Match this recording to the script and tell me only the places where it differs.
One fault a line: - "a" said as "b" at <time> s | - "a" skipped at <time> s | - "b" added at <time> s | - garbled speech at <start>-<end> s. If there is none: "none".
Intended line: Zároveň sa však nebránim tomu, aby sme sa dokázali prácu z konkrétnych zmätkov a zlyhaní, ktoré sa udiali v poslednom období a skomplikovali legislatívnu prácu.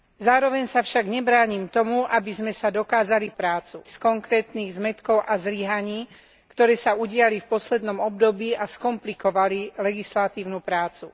none